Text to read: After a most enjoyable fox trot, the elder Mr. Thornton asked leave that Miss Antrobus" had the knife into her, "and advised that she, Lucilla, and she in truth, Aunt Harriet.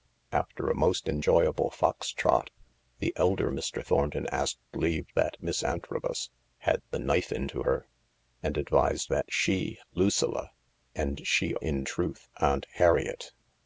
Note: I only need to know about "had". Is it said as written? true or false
true